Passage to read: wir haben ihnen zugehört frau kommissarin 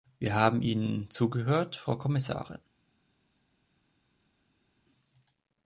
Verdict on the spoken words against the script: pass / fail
pass